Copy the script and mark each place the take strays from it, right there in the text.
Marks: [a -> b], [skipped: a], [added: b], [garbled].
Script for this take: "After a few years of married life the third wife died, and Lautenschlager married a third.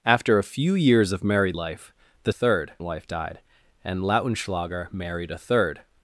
"After a few years of married life the third wife died, and Lautenschlager married a third.